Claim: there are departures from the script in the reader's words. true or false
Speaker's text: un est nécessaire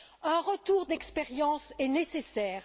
true